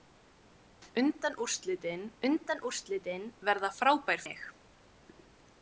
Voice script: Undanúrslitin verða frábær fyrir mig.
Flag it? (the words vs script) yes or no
yes